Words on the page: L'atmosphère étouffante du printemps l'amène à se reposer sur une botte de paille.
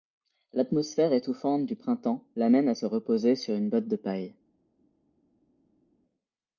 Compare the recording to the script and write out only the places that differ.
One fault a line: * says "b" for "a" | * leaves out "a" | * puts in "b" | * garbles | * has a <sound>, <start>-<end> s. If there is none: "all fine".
all fine